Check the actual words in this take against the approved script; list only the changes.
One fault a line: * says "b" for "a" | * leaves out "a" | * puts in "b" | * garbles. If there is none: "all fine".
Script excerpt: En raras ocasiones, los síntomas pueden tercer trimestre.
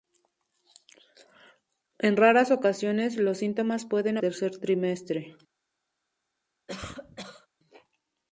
all fine